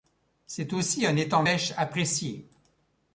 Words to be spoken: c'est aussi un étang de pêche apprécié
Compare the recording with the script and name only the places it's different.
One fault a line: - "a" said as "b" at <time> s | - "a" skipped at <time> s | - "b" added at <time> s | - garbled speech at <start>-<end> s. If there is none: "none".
- "de" skipped at 1.4 s